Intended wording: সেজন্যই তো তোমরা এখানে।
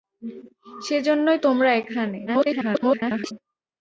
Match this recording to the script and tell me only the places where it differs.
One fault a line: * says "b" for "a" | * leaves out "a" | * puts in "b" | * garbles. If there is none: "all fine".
* leaves out "তো"
* garbles